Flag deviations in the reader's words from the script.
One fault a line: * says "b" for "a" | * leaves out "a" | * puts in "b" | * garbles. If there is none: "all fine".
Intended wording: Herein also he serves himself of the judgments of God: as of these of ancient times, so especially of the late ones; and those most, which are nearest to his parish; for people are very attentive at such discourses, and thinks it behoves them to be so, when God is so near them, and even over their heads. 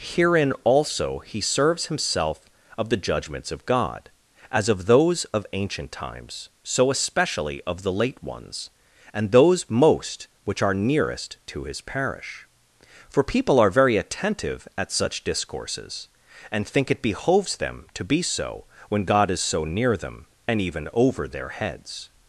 * says "those" for "these"
* says "think" for "thinks"